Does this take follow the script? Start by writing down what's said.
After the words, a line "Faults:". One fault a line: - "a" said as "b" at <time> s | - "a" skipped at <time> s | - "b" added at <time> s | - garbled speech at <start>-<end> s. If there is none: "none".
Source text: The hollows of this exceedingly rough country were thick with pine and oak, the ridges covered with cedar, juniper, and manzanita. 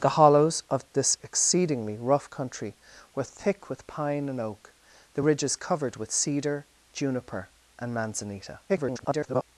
The hollows of this exceedingly rough country were thick with pine and oak, the ridges covered with cedar, juniper, and manzanita. [garbled]
Faults:
- garbled speech at 8.7-9.4 s